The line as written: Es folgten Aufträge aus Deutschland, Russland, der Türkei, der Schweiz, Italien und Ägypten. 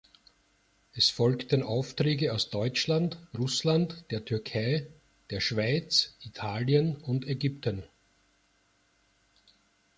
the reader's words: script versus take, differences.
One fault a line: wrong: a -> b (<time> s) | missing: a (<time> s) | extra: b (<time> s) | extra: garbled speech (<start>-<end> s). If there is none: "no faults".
no faults